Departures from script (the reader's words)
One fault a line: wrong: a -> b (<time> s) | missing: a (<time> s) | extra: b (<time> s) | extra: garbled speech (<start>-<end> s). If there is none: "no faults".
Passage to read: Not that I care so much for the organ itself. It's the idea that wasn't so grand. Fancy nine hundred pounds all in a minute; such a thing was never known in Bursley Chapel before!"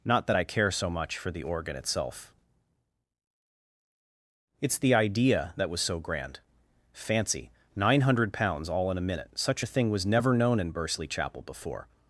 wrong: wasn't -> was (5.7 s)